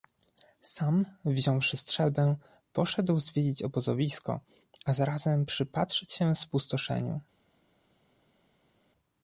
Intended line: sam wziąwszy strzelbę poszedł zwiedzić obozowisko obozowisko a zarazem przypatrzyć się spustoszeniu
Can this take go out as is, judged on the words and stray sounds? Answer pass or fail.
fail